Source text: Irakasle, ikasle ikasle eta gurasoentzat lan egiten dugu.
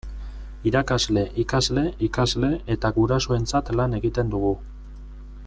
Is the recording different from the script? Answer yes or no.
no